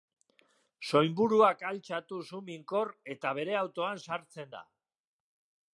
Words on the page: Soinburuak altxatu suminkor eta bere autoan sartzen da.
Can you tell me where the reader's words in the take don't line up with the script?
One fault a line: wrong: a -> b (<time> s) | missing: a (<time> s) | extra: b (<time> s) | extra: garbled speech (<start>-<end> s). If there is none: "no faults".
no faults